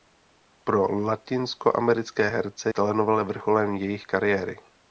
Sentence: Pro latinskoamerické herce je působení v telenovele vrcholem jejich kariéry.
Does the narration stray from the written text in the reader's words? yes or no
yes